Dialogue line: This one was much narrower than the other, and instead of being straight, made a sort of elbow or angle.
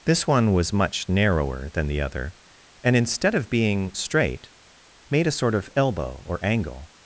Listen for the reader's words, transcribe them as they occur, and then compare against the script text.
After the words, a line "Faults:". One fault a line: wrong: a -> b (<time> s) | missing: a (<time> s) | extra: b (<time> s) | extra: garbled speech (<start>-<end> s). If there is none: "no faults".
This one was much narrower than the other, and instead of being straight, made a sort of elbow or angle.
Faults:
no faults